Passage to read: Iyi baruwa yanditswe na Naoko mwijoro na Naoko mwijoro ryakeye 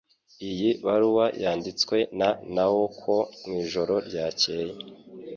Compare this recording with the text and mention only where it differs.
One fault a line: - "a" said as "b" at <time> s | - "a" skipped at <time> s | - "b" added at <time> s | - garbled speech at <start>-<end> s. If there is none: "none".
- "na Naoko mwijoro" skipped at 3.9 s